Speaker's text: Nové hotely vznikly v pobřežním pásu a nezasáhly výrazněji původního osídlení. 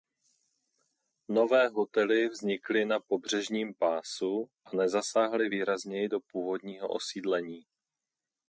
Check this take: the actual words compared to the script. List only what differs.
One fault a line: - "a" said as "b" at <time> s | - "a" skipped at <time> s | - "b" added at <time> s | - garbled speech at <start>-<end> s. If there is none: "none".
- "v" said as "na" at 2.9 s
- "do" added at 6.1 s